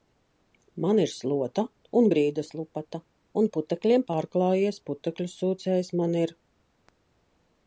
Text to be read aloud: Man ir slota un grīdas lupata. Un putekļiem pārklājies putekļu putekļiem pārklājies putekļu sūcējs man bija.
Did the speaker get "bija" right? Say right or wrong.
wrong